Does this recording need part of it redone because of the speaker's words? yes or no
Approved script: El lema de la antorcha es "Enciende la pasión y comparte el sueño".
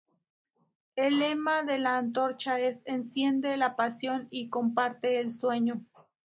no